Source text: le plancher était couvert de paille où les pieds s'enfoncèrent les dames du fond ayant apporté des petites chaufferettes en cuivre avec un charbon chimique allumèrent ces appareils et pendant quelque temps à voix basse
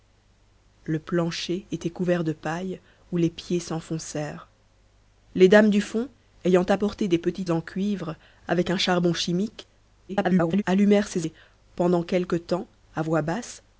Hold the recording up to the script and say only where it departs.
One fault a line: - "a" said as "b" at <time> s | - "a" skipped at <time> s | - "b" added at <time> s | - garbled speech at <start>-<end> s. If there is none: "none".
- "chaufferettes" skipped at 7.5 s
- garbled speech at 10.1-10.6 s
- "appareils" skipped at 11.3 s